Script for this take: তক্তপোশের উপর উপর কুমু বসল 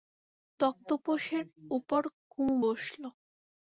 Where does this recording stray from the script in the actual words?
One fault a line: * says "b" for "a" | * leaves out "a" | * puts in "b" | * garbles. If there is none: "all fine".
* leaves out "উপর"